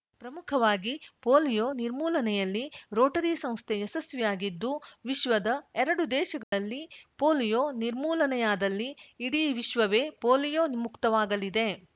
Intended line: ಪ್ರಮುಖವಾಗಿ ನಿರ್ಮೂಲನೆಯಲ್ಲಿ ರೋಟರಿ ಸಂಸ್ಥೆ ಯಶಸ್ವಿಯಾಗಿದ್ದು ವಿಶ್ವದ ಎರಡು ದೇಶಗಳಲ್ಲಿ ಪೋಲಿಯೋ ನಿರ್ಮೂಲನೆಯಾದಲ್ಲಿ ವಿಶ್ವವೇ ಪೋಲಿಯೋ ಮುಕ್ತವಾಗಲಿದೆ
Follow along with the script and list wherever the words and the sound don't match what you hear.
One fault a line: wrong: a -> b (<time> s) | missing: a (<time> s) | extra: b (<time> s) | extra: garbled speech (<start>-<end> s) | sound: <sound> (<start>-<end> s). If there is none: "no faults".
extra: ಪೋಲಿಯೋ (1.2 s)
sound: dropout (6.4-6.5 s)
extra: ಇಡೀ (9.2 s)